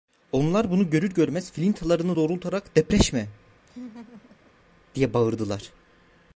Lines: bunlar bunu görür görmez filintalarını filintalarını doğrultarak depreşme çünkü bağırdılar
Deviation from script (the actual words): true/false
true